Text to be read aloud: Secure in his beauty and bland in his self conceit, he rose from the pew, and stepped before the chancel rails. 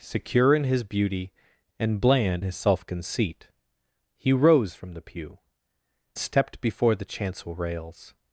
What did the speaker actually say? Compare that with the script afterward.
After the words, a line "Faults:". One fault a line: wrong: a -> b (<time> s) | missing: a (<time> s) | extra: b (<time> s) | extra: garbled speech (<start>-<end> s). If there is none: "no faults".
Secure in his beauty and bland his self conceit, he rose from the pew, stepped before the chancel rails.
Faults:
missing: in (2.4 s)
missing: and (5.4 s)